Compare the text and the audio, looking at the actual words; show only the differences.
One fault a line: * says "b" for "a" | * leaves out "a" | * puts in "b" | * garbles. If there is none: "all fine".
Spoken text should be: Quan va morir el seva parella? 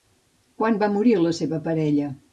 * says "la" for "el"